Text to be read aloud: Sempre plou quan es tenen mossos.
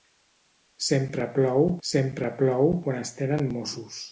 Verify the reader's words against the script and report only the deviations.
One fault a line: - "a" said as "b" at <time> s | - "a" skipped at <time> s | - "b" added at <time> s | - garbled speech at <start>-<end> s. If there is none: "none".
- "sempre plou" added at 1.9 s